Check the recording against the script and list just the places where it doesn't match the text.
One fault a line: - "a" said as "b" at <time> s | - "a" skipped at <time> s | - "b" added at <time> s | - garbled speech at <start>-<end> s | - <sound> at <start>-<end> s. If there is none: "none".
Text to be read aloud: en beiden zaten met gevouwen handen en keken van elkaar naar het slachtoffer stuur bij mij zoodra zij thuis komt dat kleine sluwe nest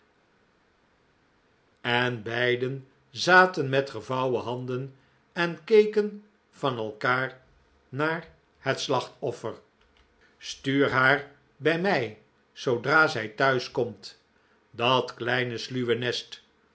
- "haar" added at 10.9 s